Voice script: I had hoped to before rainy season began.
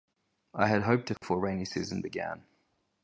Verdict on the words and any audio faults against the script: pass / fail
fail